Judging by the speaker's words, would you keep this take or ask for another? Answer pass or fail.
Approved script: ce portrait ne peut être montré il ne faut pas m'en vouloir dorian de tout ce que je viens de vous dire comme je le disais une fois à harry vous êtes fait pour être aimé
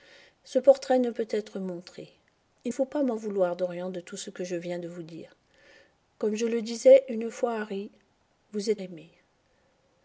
fail